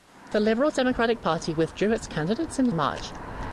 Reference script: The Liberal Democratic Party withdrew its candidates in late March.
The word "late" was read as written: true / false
false